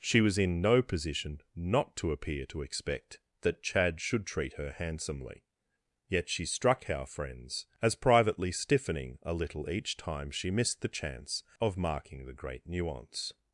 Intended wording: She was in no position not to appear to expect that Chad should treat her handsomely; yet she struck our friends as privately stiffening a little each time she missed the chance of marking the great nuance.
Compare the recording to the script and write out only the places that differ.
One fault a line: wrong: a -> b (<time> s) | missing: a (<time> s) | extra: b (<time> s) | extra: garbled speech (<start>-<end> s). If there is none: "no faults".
no faults